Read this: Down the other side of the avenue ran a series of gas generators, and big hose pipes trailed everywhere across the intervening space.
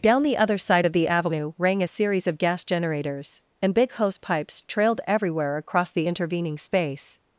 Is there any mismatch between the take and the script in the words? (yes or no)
yes